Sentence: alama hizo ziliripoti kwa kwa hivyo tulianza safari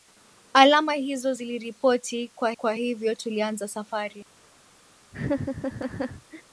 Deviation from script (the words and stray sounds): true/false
true